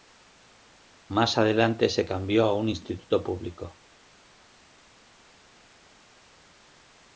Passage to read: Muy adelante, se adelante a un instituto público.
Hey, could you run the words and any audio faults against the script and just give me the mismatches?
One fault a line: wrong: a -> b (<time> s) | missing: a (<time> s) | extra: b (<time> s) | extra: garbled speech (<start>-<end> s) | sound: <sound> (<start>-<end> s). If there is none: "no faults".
wrong: Muy -> Más (1.1 s)
wrong: adelante -> cambió (2.1 s)